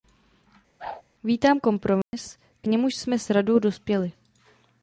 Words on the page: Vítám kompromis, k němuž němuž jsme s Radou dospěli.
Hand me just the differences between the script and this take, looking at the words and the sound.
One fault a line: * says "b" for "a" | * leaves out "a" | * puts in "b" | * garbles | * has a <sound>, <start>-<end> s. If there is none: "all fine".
* has a whoosh, 0.8-1.0 s
* has a dropout, 2.0-2.1 s
* leaves out "němuž"